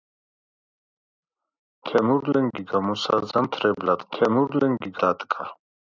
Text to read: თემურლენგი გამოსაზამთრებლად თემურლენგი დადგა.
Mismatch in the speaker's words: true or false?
false